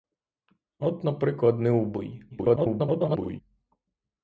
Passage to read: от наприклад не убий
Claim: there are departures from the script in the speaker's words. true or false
true